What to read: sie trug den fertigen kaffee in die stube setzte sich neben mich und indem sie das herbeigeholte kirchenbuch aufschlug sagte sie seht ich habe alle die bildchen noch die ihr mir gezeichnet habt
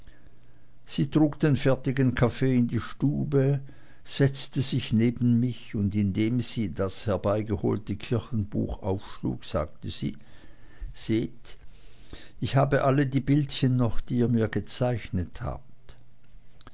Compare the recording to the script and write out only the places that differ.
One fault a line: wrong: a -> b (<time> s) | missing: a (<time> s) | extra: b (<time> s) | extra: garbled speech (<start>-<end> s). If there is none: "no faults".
no faults